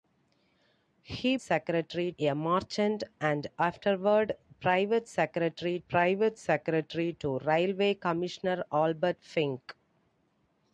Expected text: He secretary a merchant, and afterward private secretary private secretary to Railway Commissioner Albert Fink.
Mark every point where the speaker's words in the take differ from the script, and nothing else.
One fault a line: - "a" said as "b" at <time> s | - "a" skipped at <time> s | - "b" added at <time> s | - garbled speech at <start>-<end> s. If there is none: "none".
none